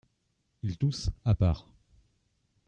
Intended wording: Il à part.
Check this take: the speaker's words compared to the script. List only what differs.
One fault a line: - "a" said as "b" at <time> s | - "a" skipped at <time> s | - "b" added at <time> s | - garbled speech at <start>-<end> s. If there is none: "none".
- "tousse" added at 0.8 s